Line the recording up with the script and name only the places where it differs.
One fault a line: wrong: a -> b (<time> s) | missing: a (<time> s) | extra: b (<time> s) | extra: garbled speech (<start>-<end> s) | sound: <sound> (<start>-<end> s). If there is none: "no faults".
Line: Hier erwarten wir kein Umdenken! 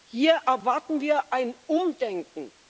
wrong: kein -> ein (1.3 s)